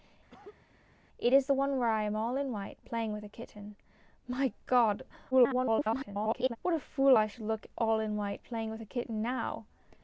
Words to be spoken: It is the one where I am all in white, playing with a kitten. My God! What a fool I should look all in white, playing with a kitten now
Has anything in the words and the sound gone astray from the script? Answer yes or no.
yes